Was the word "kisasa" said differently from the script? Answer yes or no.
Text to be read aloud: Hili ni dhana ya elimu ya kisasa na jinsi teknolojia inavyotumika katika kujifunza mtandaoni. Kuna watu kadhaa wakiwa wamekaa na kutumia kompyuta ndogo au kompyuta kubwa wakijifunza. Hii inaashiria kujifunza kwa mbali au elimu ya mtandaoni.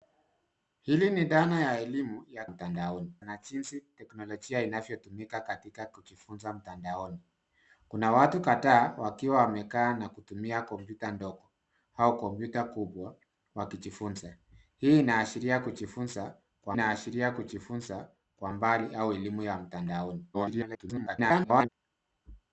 yes